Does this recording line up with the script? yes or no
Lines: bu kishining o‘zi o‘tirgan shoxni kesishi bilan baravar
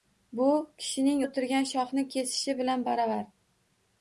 no